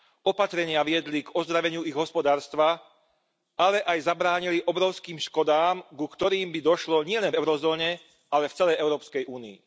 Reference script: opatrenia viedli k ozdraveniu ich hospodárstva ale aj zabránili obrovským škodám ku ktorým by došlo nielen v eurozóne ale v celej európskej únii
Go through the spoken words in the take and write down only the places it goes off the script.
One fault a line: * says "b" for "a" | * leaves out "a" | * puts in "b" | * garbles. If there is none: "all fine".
all fine